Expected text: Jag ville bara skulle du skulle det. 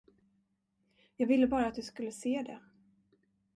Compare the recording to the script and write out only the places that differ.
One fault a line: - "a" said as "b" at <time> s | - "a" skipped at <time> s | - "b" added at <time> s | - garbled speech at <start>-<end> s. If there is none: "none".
- "skulle" said as "att" at 1.7 s
- "se" added at 2.1 s